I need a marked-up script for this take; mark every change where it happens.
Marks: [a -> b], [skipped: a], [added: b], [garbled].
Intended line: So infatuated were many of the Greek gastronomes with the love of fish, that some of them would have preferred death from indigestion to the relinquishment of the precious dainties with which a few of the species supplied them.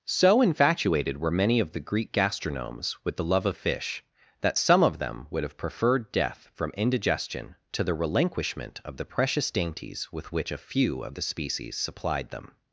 So infatuated were many of the Greek gastronomes with the love of fish, that some of them would have preferred death from indigestion to the relinquishment of the precious dainties with which a few of the species supplied them.